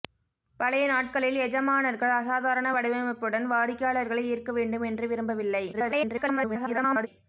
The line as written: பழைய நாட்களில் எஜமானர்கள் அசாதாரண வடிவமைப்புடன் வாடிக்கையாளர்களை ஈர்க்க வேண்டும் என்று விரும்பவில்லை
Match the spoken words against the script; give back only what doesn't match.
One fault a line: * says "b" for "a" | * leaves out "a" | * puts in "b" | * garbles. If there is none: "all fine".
* garbles